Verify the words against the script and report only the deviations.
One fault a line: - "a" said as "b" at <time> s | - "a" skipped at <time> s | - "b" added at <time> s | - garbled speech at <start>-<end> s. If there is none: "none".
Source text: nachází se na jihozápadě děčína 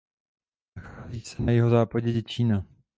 none